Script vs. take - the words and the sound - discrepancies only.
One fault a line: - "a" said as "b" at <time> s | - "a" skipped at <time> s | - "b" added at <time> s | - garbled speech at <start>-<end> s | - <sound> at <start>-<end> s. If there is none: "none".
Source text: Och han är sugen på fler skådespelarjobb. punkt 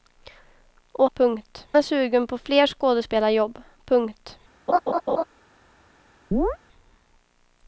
- "han" said as "punkt" at 1.1 s
- laugh at 4.7-5.2 s
- chirp at 6.3-6.6 s